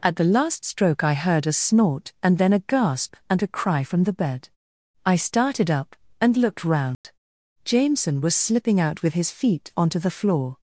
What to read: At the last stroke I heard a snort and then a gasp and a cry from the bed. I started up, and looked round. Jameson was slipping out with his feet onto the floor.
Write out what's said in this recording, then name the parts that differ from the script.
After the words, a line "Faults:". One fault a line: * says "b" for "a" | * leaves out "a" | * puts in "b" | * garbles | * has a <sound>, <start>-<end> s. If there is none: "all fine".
At the last stroke I heard a snort and then a gasp and a cry from the bed. I started up, and looked round. Jameson was slipping out with his feet onto the floor.
Faults:
* has a dropout, 6.9-7.0 s